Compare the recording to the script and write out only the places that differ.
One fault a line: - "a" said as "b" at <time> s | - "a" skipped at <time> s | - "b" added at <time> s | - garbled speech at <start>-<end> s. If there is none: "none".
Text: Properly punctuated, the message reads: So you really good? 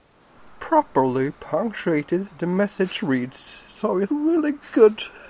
none